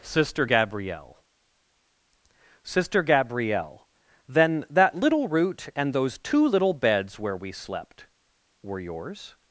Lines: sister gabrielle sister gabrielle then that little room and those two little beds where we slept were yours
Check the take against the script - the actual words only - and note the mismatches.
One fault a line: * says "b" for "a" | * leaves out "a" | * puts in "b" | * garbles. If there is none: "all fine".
* says "root" for "room"